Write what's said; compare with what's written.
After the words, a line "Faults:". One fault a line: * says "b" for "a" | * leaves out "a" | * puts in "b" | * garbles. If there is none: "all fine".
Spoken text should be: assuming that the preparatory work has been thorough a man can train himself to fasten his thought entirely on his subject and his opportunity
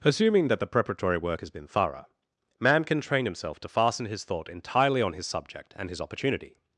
assuming that the preparatory work has been thorough man can train himself to fasten his thought entirely on his subject and his opportunity
Faults:
* leaves out "a"